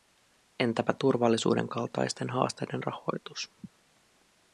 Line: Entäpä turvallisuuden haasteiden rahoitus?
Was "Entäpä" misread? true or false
false